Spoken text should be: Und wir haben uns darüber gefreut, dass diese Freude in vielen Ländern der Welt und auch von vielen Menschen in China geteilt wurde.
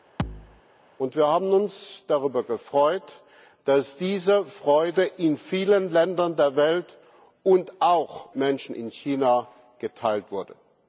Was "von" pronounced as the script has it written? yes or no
no